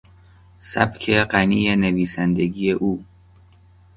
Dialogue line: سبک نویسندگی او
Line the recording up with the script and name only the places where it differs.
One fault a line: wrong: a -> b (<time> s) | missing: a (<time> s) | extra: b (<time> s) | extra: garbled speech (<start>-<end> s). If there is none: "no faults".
extra: غنی (1.3 s)